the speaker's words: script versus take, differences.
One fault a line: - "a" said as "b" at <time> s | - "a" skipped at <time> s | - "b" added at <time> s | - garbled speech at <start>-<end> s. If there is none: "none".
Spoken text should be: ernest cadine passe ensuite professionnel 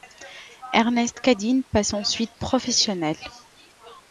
none